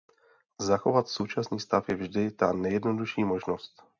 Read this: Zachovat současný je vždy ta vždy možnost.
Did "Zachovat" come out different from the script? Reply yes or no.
no